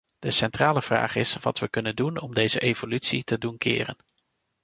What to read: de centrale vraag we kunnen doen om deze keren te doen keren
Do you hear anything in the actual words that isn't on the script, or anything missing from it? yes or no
yes